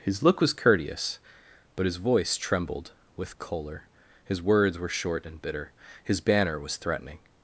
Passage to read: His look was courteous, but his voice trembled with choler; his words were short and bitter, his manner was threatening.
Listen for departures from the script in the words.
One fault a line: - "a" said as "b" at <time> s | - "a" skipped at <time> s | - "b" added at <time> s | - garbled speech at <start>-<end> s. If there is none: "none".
- "manner" said as "banner" at 6.2 s